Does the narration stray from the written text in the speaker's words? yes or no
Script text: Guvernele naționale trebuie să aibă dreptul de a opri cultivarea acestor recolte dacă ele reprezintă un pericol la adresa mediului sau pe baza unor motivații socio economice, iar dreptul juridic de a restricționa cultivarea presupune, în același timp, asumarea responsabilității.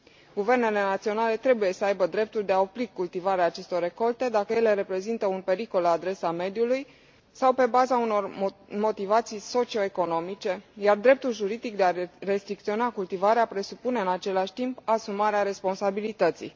no